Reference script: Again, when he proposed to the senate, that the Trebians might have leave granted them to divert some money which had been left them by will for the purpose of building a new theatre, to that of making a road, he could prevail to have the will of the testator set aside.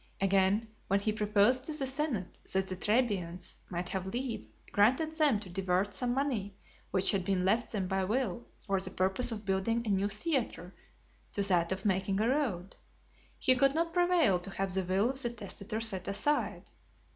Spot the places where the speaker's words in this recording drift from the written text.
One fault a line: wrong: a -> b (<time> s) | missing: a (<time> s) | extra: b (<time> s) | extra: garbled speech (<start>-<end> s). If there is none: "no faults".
extra: not (13.8 s)